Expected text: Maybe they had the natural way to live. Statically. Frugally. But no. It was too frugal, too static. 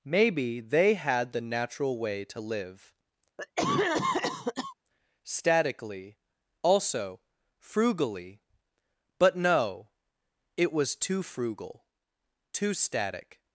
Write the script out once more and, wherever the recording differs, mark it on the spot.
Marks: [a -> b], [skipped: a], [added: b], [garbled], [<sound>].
Maybe they had the natural way to live. [cough] Statically. [added: Also] Frugally. But no. It was too frugal, too static.